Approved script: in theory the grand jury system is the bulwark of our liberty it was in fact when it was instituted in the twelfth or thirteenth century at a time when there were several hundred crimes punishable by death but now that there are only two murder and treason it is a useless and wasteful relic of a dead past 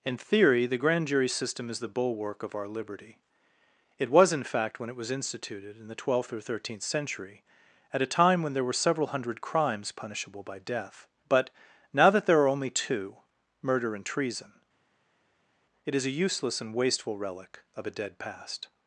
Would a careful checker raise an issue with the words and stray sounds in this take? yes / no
no